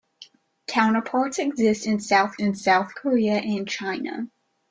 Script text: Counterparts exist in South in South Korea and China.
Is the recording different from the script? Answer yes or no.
no